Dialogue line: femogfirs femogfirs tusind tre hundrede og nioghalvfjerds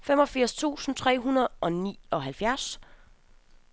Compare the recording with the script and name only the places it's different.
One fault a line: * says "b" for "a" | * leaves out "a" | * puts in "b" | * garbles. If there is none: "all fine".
* leaves out "femogfirs"